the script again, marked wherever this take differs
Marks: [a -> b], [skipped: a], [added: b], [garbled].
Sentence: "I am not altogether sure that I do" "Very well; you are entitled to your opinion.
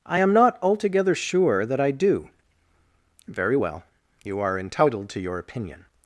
"I am not altogether sure that I do" "Very well; you are entitled to your opinion.